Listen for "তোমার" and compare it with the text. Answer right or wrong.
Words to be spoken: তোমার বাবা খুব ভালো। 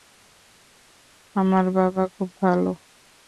wrong